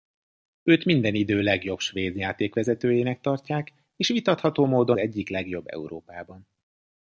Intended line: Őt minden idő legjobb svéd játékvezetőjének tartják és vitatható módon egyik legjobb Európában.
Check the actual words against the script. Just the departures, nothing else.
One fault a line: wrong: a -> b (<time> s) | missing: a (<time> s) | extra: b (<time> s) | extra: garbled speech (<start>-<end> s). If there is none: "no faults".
no faults